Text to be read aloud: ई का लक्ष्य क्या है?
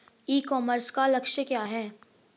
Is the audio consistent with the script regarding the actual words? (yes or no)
no